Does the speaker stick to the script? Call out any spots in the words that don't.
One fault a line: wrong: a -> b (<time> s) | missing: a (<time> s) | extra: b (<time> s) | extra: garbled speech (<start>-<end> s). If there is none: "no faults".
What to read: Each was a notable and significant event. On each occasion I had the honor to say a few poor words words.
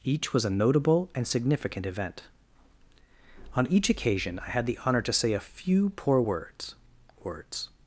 no faults